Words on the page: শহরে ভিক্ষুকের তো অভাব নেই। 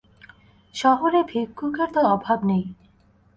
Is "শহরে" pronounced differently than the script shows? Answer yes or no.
no